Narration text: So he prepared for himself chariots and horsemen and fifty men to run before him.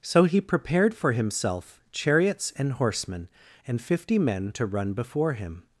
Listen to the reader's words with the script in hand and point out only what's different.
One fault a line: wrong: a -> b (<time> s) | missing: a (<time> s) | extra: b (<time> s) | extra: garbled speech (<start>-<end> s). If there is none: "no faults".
no faults